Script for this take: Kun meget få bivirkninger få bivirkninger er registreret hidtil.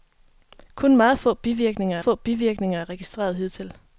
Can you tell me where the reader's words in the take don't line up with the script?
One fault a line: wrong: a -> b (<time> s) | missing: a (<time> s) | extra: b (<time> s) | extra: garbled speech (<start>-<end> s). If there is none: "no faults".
no faults